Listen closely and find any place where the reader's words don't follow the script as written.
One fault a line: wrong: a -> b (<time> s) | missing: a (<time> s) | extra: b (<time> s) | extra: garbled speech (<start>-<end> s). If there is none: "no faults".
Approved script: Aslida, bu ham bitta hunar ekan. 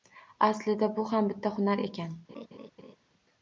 no faults